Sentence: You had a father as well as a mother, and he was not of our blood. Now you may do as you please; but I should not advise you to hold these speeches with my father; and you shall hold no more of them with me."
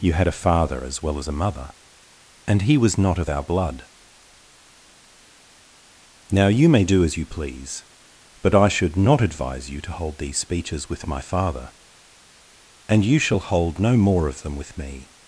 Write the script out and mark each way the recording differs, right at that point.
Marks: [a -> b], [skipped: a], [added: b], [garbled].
You had a father as well as a mother, and he was not of our blood. Now you may do as you please; but I should not advise you to hold these speeches with my father; and you shall hold no more of them with me."